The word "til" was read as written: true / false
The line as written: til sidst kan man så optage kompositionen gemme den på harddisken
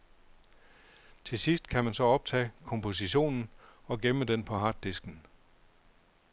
true